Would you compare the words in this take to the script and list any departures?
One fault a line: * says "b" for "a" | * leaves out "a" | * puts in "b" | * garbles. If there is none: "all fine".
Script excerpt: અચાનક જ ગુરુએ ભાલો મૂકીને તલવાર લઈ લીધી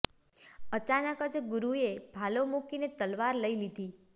all fine